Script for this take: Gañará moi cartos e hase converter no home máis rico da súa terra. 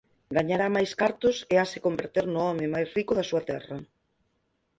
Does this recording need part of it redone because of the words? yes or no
yes